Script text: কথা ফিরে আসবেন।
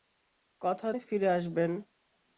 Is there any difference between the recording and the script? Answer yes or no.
no